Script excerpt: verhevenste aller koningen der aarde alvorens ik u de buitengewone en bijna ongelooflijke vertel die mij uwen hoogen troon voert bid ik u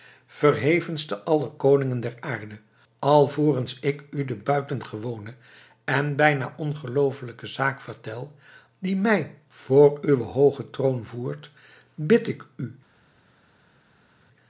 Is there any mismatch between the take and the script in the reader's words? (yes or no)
yes